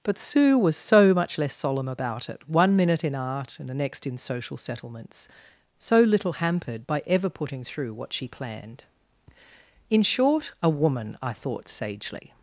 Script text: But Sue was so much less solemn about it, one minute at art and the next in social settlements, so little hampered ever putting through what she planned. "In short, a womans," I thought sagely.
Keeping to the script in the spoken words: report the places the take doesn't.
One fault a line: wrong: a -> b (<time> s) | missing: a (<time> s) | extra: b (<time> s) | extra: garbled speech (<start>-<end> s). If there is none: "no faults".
wrong: at -> in (3.0 s)
extra: by (6.9 s)
wrong: womans -> woman (10.7 s)